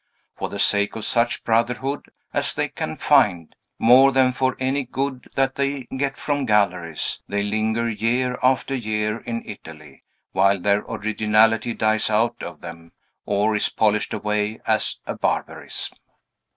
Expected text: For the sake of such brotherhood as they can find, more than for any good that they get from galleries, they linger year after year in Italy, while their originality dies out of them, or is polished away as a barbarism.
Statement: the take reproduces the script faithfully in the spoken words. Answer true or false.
true